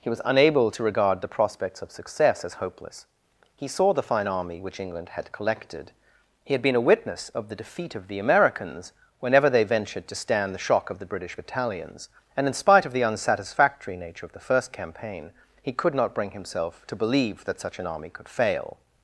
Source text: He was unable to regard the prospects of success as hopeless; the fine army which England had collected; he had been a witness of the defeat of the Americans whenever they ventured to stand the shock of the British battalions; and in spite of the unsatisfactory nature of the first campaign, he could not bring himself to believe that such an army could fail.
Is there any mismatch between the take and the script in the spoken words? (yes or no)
yes